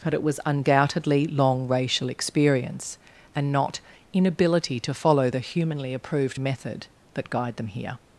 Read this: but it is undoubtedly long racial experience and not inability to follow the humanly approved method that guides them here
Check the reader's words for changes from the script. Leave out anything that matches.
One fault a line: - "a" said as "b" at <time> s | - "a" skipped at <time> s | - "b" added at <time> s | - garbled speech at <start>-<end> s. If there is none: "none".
- "is" said as "was" at 0.2 s
- "guides" said as "guide" at 7.3 s